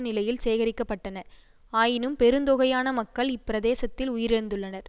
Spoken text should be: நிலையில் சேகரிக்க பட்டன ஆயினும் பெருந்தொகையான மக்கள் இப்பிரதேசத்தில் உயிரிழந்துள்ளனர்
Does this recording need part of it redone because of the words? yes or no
no